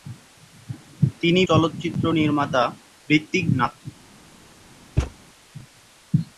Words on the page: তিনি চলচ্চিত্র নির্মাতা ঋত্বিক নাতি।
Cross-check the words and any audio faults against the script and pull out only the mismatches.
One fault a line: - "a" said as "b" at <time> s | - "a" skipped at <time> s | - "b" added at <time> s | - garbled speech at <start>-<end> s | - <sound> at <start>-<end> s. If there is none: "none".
- thud at 5.0-5.1 s